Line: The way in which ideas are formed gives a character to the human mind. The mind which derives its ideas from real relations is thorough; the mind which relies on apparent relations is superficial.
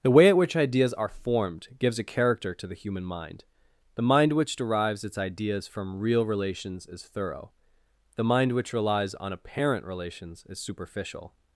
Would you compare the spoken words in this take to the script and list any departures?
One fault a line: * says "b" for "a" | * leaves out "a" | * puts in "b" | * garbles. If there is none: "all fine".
* says "at" for "in"